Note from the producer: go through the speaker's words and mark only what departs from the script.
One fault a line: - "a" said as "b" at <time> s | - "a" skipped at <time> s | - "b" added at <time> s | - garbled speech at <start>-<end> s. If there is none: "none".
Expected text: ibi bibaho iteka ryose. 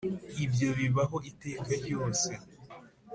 - "ibi" said as "ibyo" at 0.5 s